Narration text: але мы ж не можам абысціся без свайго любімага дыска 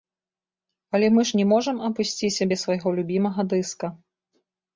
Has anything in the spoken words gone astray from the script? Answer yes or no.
no